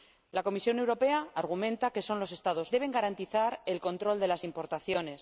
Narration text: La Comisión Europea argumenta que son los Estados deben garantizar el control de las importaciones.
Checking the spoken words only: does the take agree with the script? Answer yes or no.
yes